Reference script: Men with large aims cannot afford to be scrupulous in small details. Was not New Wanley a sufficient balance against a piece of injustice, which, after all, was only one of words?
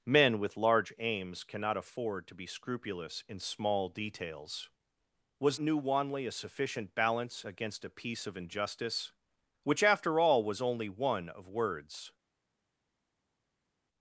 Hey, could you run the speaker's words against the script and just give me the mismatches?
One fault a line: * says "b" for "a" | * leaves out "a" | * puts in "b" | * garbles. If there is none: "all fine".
* leaves out "not"